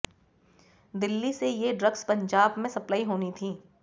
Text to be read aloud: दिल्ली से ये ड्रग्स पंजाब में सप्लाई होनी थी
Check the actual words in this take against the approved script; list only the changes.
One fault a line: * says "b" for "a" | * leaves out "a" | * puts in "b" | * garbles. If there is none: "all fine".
all fine